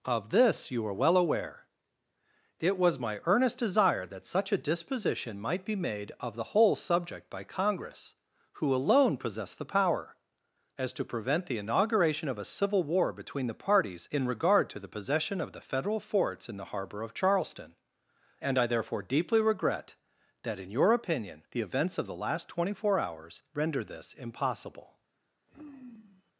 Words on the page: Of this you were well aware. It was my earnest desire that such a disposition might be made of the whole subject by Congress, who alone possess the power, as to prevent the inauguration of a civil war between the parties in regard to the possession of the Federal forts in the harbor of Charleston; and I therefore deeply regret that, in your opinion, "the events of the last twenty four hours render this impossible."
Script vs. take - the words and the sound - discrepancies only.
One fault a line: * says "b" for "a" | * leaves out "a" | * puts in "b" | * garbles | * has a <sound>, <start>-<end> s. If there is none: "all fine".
* says "are" for "were"
* has a sigh, 25.5-26.3 s